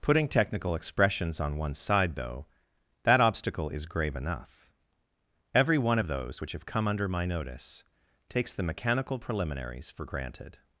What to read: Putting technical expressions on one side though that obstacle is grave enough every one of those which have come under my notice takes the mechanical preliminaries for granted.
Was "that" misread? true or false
false